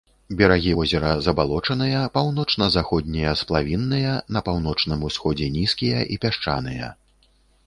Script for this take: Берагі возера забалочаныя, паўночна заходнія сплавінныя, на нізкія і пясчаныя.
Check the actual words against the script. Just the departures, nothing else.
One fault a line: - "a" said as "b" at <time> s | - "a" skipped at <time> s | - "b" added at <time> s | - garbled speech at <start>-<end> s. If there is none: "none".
- "паўночным усходзе" added at 4.5 s